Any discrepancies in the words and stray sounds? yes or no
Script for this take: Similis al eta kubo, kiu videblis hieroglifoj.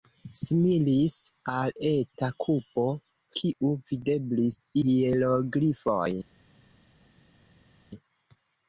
no